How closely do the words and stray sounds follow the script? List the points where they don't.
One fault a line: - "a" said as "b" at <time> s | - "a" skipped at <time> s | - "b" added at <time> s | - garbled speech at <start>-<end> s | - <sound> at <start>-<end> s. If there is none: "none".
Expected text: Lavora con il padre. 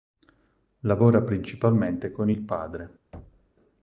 - "principalmente" added at 1.2 s
- thud at 3.1-3.5 s